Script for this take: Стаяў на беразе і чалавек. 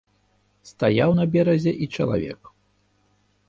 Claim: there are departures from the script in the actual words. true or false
false